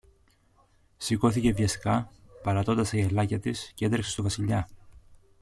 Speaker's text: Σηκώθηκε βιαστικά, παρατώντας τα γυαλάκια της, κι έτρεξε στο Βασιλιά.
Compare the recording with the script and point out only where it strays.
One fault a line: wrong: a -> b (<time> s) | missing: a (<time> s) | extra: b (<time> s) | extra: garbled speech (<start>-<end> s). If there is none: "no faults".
no faults